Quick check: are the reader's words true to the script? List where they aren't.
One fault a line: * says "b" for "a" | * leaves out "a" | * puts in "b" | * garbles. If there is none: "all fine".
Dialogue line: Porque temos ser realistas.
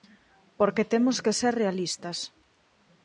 * puts in "que"